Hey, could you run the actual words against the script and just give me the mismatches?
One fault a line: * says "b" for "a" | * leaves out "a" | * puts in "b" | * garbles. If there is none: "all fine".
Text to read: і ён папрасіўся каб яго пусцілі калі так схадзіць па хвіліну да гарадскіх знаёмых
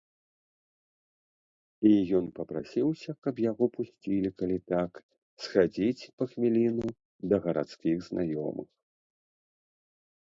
all fine